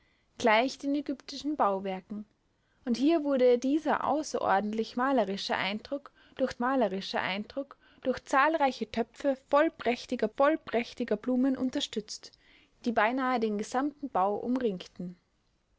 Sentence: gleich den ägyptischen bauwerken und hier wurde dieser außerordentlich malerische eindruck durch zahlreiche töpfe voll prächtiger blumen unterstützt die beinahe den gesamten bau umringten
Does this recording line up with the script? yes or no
no